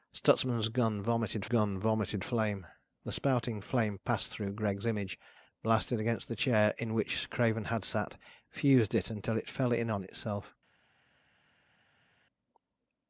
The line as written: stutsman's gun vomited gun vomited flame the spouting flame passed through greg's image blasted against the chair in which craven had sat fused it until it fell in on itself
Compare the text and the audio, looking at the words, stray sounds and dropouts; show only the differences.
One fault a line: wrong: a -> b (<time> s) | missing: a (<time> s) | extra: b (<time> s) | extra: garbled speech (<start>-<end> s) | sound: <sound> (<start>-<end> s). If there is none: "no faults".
no faults